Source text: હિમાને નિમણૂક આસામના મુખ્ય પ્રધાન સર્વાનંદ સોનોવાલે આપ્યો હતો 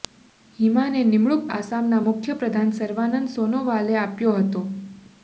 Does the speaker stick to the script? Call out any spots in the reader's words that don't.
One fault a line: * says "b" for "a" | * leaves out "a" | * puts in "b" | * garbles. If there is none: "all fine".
all fine